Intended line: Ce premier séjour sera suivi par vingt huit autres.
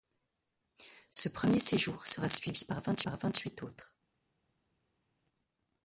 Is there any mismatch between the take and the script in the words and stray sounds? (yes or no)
yes